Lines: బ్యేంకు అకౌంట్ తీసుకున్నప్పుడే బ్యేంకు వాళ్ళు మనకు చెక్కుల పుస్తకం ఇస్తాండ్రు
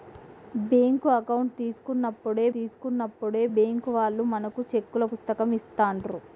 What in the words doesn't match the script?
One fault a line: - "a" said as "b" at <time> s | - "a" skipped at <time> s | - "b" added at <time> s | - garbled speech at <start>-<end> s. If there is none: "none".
- "తీసుకున్నప్పుడే" added at 2.5 s